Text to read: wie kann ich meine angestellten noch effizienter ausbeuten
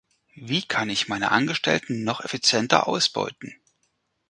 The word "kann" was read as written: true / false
true